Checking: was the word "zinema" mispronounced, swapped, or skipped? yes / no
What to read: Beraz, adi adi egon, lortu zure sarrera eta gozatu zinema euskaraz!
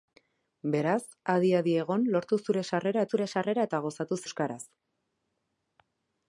yes